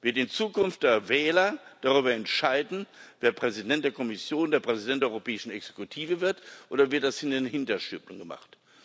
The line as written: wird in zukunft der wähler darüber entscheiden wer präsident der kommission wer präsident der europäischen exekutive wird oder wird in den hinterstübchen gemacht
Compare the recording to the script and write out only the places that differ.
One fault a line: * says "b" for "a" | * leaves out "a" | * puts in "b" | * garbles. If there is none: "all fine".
* puts in "das"